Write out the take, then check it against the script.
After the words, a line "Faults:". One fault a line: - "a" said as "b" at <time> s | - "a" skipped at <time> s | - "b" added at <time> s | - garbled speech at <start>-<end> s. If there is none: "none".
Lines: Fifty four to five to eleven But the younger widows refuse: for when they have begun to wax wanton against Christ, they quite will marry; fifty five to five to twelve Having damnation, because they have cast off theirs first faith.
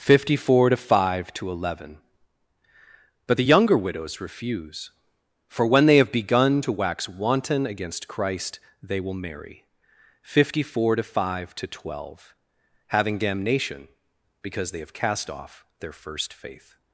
Fifty four to five to eleven But the younger widows refuse: for when they have begun to wax wanton against Christ, they will marry; fifty four to five to twelve Having damnation, because they have cast off their first faith.
Faults:
- "quite" skipped at 9.0 s
- "five" said as "four" at 10.6 s
- "theirs" said as "their" at 15.8 s